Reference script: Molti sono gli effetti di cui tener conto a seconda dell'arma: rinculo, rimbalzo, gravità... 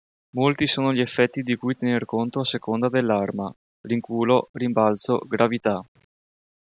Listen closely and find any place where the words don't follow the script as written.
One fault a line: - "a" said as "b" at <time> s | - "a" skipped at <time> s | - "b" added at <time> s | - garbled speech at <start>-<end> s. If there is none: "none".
none